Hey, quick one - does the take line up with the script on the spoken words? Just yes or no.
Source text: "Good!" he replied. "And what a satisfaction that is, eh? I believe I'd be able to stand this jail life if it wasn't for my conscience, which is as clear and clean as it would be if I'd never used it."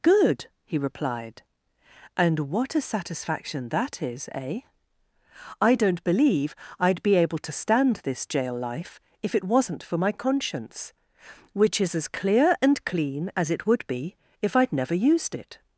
no